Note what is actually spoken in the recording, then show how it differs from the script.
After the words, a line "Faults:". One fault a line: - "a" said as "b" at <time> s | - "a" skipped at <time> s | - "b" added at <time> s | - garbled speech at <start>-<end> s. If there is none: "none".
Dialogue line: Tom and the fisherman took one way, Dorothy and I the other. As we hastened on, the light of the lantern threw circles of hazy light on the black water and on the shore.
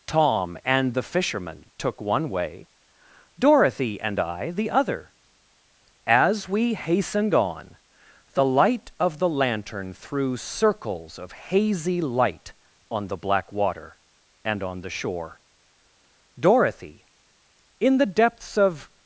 Tom and the fisherman took one way, Dorothy and I the other. As we hastened on, the light of the lantern threw circles of hazy light on the black water and on the shore. Dorothy, in the depths of
Faults:
- "Dorothy in the depths of" added at 16.4 s